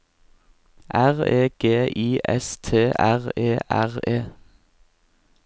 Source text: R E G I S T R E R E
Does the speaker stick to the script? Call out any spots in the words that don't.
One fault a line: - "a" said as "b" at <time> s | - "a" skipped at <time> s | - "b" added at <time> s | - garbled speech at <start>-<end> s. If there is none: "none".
none